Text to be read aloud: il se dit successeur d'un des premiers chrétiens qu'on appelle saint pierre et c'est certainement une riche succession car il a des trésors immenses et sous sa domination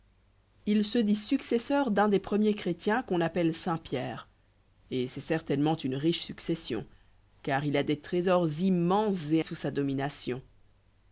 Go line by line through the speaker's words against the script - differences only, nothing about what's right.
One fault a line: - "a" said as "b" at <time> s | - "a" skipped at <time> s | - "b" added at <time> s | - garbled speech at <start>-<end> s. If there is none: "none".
none